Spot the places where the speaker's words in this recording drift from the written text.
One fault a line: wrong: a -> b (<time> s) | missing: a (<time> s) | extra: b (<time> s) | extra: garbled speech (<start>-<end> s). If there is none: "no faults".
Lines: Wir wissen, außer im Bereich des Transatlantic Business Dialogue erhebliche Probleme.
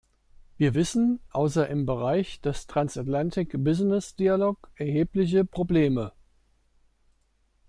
no faults